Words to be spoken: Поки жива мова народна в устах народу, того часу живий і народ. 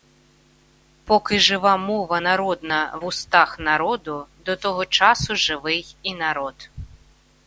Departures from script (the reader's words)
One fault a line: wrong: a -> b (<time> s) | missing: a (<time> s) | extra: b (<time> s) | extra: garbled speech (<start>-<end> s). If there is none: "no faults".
extra: до (4.4 s)